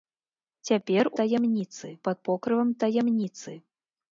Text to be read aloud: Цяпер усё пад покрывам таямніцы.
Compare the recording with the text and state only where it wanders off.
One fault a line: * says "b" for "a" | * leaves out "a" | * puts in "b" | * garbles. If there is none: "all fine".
* says "таямніцы" for "усё"